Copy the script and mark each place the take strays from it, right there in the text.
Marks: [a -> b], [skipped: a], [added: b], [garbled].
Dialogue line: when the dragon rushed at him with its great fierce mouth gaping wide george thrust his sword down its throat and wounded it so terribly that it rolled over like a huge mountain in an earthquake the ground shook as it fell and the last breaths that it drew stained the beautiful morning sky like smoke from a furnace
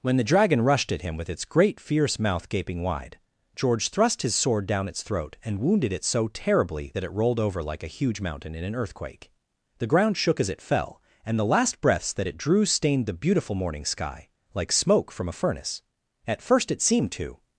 when the dragon rushed at him with its great fierce mouth gaping wide george thrust his sword down its throat and wounded it so terribly that it rolled over like a huge mountain in an earthquake the ground shook as it fell and the last breaths that it drew stained the beautiful morning sky like smoke from a furnace [added: at first it seemed to]